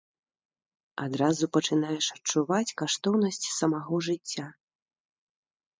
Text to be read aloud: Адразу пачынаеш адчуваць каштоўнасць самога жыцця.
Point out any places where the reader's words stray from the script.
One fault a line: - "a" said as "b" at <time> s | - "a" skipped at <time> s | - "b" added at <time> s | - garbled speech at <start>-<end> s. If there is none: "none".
none